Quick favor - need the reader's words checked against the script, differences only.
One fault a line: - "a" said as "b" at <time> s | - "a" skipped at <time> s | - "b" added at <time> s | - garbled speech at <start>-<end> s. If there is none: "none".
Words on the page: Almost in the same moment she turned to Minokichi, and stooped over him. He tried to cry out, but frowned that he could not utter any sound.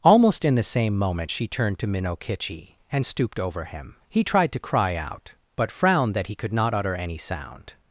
none